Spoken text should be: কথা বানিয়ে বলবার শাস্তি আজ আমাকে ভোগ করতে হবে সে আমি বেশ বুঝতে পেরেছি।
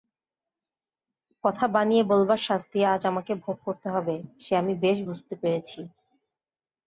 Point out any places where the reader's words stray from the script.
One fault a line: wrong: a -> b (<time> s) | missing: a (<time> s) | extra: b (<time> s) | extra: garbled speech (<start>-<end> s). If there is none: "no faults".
no faults